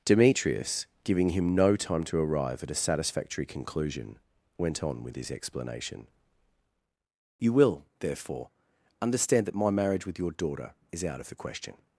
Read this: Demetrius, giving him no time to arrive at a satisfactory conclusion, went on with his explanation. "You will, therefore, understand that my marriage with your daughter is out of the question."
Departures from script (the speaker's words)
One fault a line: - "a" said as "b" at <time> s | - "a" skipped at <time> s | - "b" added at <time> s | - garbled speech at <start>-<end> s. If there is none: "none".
none